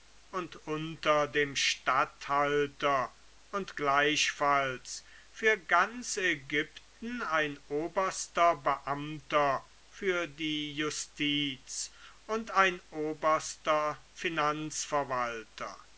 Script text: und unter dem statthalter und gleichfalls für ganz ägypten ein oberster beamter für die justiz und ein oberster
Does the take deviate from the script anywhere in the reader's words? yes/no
no